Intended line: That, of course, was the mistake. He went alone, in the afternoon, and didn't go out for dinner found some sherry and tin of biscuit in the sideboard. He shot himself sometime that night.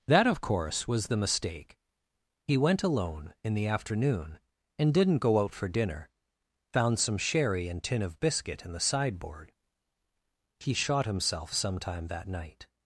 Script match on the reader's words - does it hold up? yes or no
yes